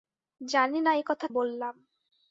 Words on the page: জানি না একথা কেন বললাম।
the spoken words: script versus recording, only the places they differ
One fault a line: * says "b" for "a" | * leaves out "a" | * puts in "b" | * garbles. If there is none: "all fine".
* leaves out "কেন"